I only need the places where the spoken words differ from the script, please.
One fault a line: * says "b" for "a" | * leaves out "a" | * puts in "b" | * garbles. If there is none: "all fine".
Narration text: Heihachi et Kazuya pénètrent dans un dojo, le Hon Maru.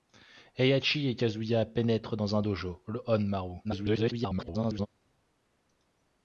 * garbles